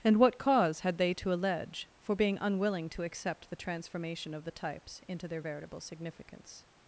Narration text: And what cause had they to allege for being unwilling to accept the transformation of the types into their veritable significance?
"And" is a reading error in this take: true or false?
false